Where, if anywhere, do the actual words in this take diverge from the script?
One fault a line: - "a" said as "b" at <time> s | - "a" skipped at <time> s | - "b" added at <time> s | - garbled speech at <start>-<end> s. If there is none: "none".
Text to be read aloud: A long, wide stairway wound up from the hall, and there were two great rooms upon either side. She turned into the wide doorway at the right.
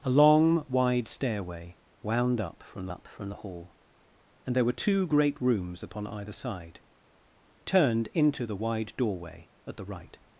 - "up from" added at 2.9 s
- "She" skipped at 6.8 s